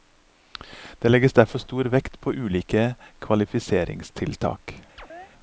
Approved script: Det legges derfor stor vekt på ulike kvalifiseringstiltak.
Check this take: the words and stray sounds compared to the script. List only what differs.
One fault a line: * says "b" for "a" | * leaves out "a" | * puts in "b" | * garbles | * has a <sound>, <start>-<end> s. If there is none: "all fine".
* has a chirp, 5.0-5.3 s